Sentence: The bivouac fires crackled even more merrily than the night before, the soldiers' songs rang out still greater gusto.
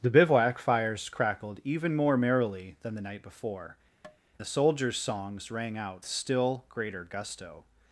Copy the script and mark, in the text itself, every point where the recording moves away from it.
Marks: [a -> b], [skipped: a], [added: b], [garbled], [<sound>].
The bivouac fires crackled even more merrily than the night before, [tap] the soldiers' songs rang out still greater gusto.